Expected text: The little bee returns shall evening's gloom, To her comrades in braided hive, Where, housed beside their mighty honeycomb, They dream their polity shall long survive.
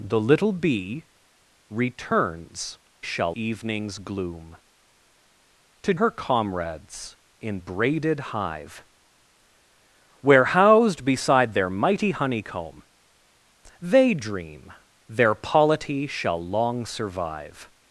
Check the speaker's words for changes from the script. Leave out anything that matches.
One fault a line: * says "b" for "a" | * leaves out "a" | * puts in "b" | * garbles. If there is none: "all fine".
all fine